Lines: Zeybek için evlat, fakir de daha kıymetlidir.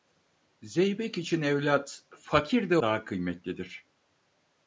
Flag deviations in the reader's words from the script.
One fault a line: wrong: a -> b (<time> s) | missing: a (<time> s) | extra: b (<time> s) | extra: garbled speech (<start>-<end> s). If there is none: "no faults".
no faults